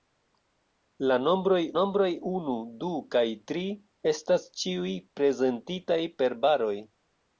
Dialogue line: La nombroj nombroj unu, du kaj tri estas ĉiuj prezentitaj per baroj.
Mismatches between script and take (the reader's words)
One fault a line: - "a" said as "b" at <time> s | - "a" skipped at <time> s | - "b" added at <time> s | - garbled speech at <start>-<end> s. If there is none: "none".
none